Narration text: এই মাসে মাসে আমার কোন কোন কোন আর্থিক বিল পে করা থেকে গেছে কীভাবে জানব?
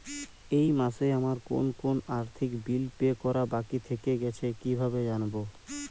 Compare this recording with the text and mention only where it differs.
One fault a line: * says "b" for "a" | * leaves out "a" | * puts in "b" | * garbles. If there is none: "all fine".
* leaves out "মাসে"
* leaves out "কোন"
* puts in "বাকী"